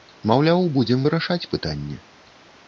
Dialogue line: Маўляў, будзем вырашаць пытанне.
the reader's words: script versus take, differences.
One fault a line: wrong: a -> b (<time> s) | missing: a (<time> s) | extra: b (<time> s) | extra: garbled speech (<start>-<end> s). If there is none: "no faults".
no faults